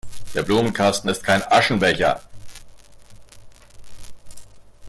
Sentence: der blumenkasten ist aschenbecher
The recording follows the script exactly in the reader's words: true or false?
false